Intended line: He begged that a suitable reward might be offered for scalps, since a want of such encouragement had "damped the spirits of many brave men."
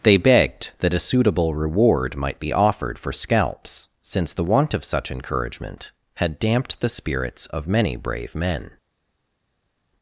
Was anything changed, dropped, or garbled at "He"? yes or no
yes